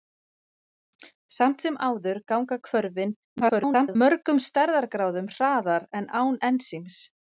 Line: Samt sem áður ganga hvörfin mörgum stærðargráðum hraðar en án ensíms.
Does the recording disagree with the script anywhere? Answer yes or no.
yes